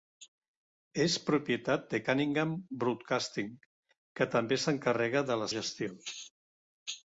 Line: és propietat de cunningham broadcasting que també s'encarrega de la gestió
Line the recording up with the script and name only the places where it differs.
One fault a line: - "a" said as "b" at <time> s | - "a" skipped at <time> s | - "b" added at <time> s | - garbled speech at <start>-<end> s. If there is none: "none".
none